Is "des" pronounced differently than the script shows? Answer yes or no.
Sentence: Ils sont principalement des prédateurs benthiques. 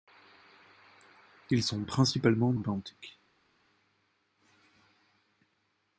yes